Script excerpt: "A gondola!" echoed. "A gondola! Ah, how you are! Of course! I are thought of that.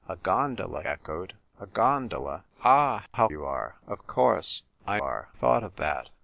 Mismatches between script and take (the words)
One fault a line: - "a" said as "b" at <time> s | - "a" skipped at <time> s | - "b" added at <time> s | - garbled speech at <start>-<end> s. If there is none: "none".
none